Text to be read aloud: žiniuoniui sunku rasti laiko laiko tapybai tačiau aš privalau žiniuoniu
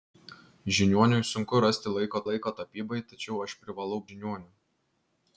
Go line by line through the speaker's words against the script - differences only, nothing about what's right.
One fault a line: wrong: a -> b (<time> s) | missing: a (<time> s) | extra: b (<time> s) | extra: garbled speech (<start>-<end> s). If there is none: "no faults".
no faults